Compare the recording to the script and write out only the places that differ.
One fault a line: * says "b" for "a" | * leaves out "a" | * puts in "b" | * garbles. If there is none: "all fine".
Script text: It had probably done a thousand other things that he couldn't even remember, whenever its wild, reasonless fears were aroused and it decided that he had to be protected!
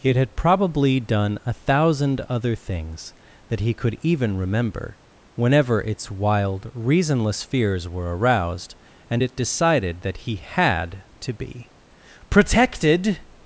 * says "could" for "couldn't"